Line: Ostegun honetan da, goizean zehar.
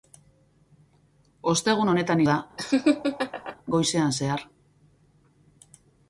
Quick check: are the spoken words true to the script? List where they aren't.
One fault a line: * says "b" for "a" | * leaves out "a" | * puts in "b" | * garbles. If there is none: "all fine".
all fine